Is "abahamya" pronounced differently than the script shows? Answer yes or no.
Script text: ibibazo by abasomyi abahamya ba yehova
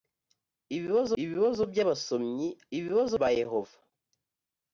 yes